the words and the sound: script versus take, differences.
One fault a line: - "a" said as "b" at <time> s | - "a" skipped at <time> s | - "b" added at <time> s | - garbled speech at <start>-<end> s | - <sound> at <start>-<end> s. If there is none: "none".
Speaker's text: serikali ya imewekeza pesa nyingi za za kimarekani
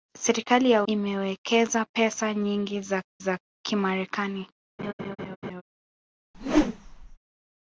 - laugh at 4.8-5.6 s
- whoosh at 6.3-7.2 s